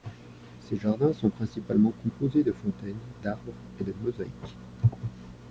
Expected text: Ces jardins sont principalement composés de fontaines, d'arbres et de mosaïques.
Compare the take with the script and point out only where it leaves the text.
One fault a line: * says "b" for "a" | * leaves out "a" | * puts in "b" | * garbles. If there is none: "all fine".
all fine